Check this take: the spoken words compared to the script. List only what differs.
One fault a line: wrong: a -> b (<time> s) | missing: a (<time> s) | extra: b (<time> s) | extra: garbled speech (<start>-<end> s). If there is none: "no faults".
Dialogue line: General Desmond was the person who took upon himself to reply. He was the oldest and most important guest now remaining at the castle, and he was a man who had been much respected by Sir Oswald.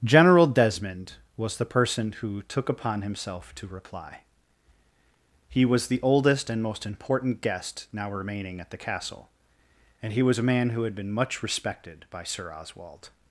no faults